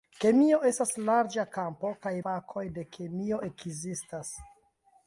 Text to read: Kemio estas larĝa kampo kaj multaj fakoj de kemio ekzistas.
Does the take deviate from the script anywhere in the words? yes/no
yes